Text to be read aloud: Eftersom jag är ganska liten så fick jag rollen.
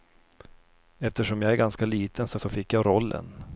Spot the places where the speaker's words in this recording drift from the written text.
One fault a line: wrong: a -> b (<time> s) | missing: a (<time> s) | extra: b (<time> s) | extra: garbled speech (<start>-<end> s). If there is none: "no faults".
extra: så (2.4 s)